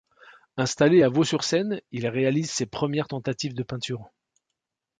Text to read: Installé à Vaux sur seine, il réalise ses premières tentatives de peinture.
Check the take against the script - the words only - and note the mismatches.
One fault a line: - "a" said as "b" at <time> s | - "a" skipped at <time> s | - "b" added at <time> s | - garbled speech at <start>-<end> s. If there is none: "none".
none